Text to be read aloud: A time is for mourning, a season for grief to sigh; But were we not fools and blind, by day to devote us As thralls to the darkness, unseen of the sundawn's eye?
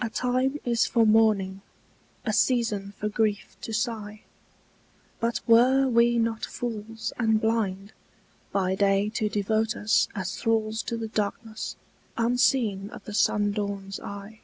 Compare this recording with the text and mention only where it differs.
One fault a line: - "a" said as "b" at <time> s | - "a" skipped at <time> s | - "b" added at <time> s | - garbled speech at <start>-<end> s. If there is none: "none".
none